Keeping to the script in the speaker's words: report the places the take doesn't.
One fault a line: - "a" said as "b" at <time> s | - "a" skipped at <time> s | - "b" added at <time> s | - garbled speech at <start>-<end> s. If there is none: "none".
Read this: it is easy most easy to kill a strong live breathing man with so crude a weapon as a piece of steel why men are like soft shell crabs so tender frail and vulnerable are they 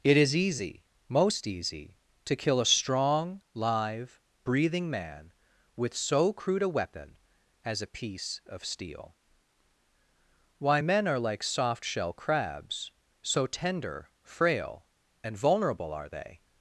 none